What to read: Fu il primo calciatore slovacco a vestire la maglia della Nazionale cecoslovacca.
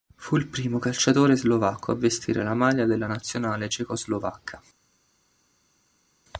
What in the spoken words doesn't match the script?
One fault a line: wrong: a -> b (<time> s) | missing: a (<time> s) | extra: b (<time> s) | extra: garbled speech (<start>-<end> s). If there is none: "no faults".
no faults